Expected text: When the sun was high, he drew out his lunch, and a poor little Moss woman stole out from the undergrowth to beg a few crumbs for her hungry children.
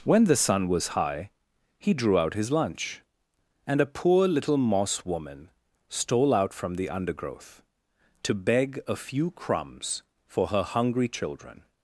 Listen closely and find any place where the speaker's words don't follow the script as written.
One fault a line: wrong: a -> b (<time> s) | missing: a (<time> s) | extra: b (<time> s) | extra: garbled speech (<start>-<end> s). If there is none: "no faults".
no faults